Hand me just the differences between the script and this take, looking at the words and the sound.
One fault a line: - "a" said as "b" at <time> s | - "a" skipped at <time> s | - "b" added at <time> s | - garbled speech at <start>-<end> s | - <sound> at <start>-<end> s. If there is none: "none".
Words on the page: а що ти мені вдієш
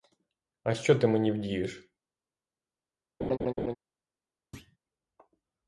- laugh at 3.2-3.8 s
- thud at 4.5-4.8 s